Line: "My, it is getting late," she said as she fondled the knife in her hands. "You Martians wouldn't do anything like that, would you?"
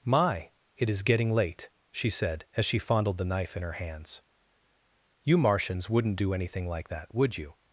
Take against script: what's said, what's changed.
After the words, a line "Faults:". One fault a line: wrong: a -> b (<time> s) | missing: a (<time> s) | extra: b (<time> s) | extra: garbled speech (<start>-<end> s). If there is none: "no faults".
"My, it is getting late," she said as she fondled the knife in her hands. "You Martians wouldn't do anything like that, would you?"
Faults:
no faults